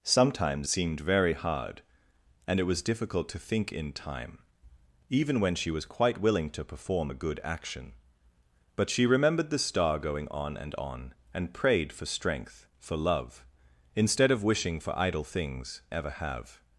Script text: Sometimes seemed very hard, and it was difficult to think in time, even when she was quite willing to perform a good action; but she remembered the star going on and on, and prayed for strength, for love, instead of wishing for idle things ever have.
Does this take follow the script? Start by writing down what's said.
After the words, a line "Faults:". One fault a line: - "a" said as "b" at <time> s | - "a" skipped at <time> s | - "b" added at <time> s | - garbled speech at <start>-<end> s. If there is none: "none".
Sometimes seemed very hard, and it was difficult to think in time, even when she was quite willing to perform a good action; but she remembered the star going on and on, and prayed for strength, for love, instead of wishing for idle things ever have.
Faults:
none